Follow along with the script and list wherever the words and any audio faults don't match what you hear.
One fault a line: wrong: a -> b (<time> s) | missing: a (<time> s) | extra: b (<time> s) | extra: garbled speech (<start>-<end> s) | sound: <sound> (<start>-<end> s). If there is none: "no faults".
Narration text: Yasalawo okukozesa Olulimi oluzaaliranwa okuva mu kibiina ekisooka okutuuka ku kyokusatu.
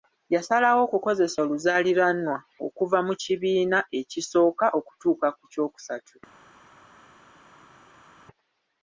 missing: Olulimi (1.4 s)